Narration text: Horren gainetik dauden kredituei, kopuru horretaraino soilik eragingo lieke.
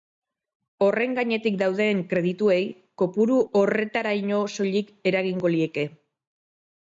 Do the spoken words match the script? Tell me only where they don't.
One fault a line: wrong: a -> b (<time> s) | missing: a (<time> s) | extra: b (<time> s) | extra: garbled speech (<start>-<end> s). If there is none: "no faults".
no faults